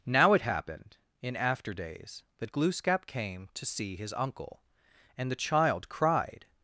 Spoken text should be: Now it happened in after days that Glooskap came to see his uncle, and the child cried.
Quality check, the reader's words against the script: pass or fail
pass